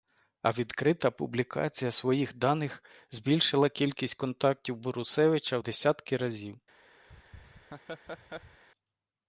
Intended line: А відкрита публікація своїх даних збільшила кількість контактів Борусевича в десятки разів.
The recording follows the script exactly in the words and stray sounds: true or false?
false